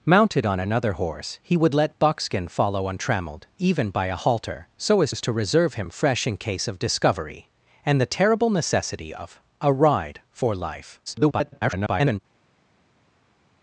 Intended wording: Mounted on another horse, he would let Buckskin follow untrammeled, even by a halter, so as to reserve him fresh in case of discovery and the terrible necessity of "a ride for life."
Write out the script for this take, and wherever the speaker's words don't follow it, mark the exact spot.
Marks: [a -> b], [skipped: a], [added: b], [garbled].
Mounted on another horse, he would let Buckskin follow untrammeled, even by a halter, so as [added: as] to reserve him fresh in case of discovery and the terrible necessity of "a ride for life." [garbled]